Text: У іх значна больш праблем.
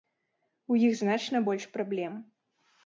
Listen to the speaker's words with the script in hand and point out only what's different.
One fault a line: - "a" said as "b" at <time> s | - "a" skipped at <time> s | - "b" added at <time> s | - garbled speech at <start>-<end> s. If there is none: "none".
none